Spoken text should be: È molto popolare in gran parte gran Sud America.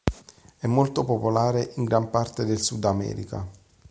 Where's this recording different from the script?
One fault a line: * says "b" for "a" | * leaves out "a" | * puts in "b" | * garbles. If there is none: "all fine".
* says "del" for "gran"